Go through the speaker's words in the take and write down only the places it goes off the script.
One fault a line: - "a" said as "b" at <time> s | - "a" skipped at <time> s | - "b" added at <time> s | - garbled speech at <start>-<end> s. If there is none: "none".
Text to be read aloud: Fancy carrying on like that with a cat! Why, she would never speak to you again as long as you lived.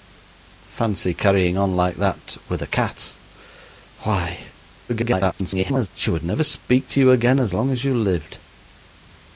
- garbled speech at 4.9-5.9 s